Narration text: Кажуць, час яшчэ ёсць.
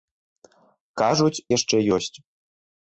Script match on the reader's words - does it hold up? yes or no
no